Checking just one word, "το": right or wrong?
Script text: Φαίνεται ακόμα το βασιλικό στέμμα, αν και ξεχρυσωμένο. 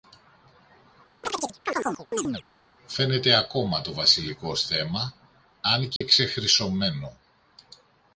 right